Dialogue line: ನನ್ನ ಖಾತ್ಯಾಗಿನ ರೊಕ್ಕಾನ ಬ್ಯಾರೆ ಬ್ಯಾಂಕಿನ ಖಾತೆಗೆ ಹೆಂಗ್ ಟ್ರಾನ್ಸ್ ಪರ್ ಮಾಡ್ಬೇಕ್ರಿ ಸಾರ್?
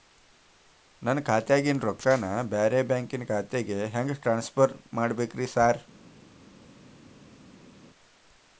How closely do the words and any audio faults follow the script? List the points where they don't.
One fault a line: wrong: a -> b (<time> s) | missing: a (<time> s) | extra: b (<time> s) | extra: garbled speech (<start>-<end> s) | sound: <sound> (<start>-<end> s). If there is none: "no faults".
no faults